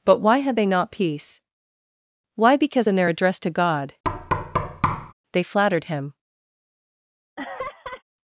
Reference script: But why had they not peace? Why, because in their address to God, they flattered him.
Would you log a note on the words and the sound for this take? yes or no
yes